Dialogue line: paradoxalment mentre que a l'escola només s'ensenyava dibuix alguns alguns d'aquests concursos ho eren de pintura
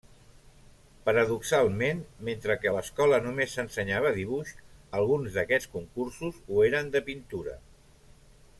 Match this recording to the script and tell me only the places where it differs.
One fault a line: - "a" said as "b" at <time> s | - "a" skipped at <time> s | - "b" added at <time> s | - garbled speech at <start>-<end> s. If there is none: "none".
- "alguns" skipped at 5.4 s